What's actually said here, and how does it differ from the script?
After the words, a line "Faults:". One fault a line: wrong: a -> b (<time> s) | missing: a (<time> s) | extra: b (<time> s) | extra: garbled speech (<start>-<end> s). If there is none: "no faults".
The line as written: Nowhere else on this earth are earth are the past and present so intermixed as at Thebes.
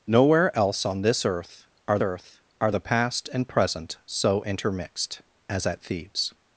Nowhere else on this earth are earth are the past and present so intermixed as at Thebes.
Faults:
no faults